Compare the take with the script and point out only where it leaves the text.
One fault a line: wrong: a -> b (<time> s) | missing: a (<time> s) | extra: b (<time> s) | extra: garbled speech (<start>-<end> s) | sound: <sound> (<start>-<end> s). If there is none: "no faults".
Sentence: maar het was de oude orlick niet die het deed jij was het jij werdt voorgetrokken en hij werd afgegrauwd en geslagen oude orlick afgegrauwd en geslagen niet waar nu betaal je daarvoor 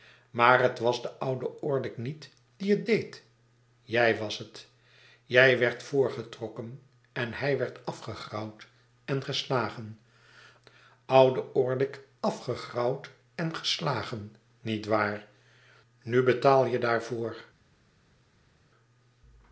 no faults